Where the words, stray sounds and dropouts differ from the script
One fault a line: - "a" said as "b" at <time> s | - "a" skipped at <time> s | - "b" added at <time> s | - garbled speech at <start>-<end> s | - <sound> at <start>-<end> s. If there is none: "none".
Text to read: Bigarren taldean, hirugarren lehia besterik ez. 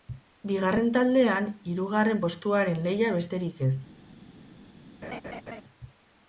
- "postuaren" added at 2.2 s
- laugh at 5.0-5.6 s